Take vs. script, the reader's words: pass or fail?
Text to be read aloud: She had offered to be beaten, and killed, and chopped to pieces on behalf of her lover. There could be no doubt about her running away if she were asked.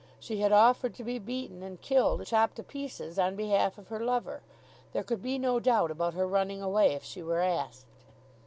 fail